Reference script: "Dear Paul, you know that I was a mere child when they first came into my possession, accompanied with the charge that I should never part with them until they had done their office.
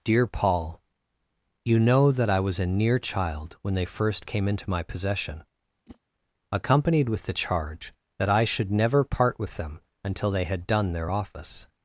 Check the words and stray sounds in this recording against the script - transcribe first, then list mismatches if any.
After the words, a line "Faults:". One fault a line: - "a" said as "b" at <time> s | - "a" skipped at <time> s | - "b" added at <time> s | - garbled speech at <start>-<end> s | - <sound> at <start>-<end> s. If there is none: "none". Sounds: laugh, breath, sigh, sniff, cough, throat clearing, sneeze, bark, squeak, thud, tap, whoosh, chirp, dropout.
"Dear Paul, you know that I was a near child when they first came into my possession, accompanied with the charge that I should never part with them until they had done their office.
Faults:
- "mere" said as "near" at 2.6 s
- whoosh at 5.9-6.0 s